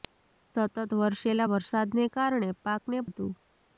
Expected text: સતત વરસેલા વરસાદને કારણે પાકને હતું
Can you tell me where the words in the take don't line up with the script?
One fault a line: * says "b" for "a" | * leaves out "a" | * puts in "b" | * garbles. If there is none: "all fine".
all fine